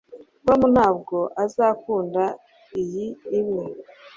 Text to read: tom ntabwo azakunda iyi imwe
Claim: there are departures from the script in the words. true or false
false